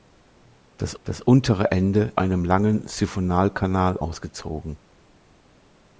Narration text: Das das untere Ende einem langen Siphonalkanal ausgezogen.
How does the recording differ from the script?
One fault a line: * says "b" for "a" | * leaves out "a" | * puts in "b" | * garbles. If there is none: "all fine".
all fine